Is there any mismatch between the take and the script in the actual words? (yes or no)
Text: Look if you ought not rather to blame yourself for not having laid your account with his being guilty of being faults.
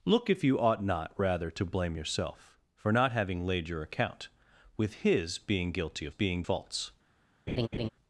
no